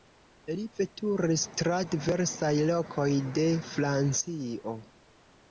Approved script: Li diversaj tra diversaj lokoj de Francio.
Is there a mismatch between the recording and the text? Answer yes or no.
yes